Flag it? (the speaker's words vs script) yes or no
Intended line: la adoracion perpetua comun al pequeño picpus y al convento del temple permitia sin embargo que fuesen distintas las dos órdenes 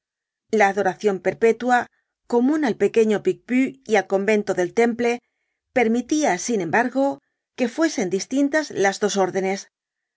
no